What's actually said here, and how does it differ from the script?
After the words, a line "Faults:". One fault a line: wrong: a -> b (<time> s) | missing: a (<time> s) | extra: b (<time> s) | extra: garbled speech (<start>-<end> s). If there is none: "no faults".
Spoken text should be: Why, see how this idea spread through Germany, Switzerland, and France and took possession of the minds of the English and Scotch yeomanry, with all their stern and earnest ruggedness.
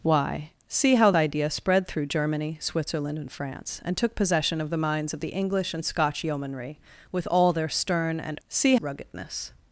Why, see how idea spread through Germany, Switzerland, and France and took possession of the minds of the English and Scotch yeomanry, with all their stern and see ruggedness.
Faults:
missing: this (1.1 s)
wrong: earnest -> see (8.5 s)